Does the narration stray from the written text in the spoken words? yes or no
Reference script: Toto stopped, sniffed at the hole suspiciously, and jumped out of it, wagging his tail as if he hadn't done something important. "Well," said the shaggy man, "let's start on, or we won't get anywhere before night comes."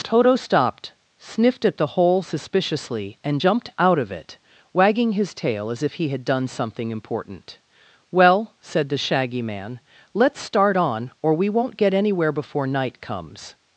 yes